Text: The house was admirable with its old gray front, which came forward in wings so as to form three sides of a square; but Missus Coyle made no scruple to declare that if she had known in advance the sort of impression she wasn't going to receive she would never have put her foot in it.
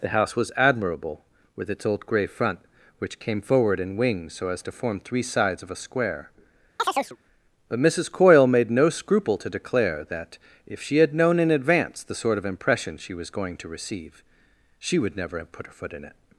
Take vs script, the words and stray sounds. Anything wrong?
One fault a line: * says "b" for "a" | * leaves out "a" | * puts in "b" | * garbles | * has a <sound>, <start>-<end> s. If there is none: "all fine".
* has a chirp, 6.8-7.2 s
* says "was" for "wasn't"